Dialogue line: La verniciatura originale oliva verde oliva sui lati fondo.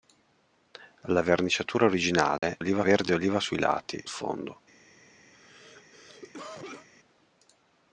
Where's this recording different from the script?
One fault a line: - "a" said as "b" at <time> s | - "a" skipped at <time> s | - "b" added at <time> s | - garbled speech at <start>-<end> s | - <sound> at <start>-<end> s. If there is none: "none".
- dropout at 2.4-2.4 s
- cough at 5.3-6.9 s